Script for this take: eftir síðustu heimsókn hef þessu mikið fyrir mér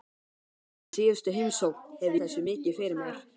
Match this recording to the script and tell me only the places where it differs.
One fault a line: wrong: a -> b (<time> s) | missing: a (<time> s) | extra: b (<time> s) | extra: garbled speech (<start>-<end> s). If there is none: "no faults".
no faults